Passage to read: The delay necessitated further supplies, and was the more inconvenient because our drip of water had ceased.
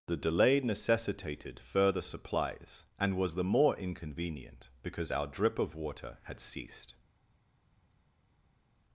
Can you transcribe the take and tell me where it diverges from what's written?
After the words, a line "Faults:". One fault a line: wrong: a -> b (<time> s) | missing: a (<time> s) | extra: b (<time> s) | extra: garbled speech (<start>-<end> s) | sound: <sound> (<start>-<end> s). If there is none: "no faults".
The delay necessitated further supplies, and was the more inconvenient because our drip of water had ceased.
Faults:
no faults